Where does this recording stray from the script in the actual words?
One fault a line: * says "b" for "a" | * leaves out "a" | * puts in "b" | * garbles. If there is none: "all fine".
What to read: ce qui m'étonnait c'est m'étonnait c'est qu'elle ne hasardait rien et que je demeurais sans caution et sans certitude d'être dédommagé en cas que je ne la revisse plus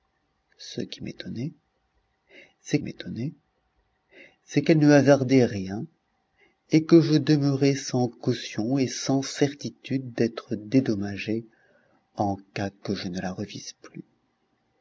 all fine